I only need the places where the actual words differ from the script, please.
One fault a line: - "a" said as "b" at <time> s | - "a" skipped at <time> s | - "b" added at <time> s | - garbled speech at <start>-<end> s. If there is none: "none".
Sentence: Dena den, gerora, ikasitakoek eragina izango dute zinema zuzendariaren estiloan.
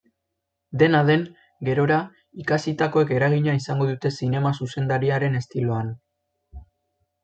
none